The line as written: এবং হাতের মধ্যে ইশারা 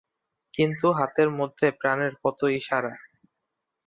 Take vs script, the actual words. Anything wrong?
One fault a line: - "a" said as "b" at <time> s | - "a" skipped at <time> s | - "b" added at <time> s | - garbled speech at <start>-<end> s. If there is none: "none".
- "এবং" said as "কিন্তু" at 0.5 s
- "প্রাণের কত" added at 1.8 s